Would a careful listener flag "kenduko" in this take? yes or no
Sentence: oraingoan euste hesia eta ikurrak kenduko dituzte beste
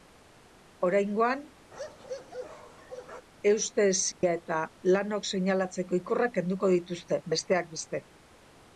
no